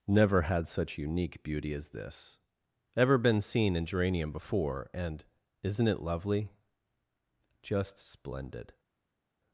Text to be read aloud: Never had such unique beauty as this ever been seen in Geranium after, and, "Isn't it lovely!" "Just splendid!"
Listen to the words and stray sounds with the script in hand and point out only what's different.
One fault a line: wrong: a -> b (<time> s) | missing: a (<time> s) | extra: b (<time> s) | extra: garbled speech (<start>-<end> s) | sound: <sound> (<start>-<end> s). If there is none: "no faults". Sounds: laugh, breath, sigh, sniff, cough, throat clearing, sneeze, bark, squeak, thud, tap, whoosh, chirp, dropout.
wrong: after -> before (4.3 s)